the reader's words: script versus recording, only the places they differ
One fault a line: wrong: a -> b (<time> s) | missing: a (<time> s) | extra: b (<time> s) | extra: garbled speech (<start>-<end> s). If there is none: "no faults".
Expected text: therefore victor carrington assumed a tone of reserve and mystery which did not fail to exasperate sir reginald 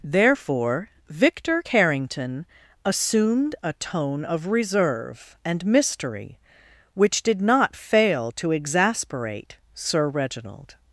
no faults